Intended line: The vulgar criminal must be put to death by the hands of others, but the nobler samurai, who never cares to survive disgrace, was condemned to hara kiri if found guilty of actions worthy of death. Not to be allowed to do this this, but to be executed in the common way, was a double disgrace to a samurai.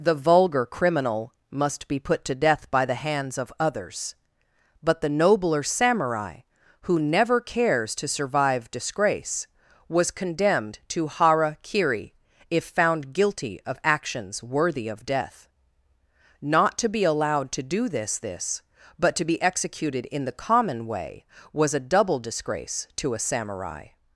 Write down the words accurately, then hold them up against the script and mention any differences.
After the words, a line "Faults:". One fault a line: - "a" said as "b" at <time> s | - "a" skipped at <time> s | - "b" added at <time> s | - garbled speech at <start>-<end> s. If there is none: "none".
The vulgar criminal must be put to death by the hands of others, but the nobler samurai, who never cares to survive disgrace, was condemned to hara kiri if found guilty of actions worthy of death. Not to be allowed to do this this, but to be executed in the common way, was a double disgrace to a samurai.
Faults:
none